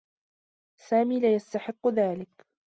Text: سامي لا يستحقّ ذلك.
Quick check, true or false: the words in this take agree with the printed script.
true